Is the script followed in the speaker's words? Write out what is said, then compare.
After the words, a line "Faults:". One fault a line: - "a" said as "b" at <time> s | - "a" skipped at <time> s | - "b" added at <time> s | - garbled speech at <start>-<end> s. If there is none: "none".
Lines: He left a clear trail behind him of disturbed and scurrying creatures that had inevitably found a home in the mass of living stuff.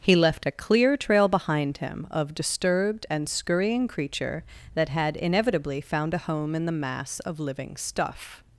He left a clear trail behind him of disturbed and scurrying creature that had inevitably found a home in the mass of living stuff.
Faults:
- "creatures" said as "creature" at 3.9 s